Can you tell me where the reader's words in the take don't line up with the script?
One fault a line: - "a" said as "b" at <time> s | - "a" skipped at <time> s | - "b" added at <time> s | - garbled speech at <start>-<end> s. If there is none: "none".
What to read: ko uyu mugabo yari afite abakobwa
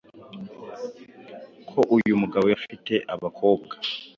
- "yari" skipped at 2.5 s